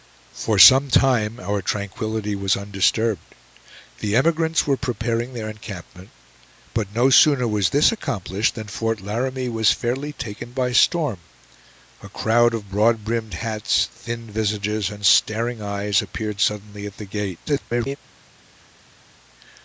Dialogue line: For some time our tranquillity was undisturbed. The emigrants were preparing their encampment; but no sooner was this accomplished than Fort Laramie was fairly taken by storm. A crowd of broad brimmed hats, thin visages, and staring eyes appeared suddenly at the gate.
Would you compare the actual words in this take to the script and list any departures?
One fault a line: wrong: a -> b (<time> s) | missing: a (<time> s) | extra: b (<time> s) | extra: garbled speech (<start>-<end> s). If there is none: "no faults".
extra: garbled speech (17.5-18.0 s)